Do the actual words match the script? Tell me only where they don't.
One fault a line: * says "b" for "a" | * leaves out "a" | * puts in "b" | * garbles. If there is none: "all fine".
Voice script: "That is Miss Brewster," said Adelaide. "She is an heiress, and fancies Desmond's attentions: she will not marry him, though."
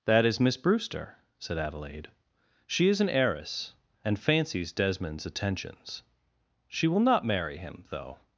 all fine